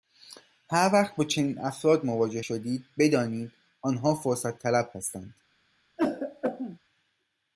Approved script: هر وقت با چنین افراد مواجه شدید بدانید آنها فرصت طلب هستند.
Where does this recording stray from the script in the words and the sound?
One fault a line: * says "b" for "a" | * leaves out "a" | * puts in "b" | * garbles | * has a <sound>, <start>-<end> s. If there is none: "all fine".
* has a throat clearing, 6.0-6.8 s